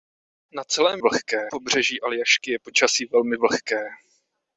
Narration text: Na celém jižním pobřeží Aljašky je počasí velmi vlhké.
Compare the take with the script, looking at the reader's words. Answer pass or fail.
fail